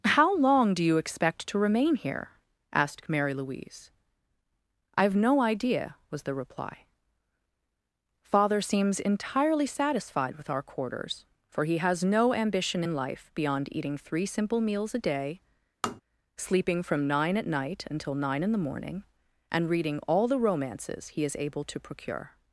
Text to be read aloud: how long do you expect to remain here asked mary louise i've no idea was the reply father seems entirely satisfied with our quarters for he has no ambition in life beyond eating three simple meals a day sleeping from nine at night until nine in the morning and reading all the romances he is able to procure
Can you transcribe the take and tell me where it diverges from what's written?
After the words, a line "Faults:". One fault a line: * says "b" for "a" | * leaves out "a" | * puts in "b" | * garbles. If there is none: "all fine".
how long do you expect to remain here asked mary louise i've no idea was the reply father seems entirely satisfied with our quarters for he has no ambition in life beyond eating three simple meals a day sleeping from nine at night until nine in the morning and reading all the romances he is able to procure
Faults:
all fine